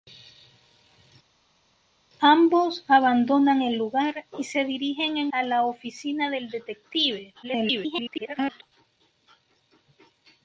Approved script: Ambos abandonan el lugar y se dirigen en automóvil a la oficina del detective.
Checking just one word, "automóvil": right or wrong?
wrong